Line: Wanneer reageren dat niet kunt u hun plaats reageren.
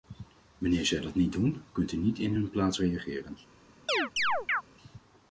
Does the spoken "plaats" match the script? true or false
true